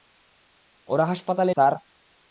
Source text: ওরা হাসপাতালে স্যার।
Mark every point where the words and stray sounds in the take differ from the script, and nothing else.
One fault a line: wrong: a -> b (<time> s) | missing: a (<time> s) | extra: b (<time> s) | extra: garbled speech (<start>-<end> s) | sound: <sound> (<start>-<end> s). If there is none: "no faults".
no faults